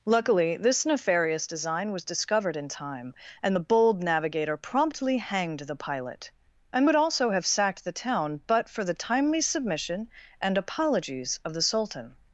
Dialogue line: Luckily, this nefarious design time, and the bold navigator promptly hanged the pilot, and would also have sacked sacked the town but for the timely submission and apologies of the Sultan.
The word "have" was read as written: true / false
true